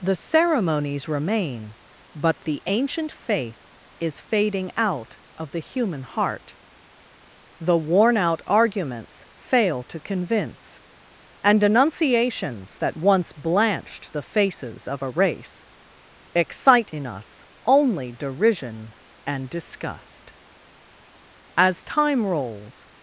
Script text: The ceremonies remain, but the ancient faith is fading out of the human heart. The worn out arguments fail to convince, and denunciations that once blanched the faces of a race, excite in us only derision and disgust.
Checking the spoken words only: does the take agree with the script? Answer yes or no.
no